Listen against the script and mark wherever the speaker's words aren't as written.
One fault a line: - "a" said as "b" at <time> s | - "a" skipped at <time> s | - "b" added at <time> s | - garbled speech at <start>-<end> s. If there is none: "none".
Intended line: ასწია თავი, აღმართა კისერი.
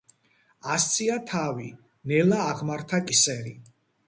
- "ნელა" added at 2.1 s